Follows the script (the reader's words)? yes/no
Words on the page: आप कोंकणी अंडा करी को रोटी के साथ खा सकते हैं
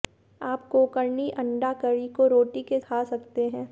no